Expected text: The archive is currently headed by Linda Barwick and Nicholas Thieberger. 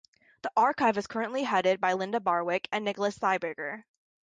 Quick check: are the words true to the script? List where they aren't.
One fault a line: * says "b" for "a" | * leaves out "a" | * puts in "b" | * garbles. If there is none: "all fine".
all fine